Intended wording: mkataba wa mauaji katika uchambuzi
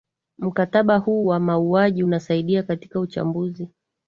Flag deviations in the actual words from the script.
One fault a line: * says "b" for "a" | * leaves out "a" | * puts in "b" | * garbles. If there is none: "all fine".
* puts in "huu"
* puts in "unasaidia"